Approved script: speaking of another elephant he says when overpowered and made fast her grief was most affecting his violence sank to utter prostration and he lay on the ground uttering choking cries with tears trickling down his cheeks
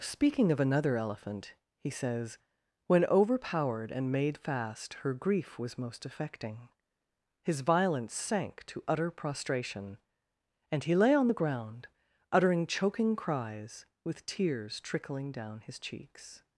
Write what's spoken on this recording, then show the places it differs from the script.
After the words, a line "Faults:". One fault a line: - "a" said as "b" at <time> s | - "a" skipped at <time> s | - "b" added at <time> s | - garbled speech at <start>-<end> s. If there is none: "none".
speaking of another elephant he says when overpowered and made fast her grief was most affecting his violence sank to utter prostration and he lay on the ground uttering choking cries with tears trickling down his cheeks
Faults:
none